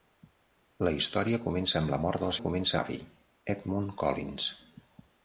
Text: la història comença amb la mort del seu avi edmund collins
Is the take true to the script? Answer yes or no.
no